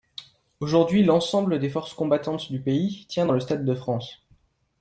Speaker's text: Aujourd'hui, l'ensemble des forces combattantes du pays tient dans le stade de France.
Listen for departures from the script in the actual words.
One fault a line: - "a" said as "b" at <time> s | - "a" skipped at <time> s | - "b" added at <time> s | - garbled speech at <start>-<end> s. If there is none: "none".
none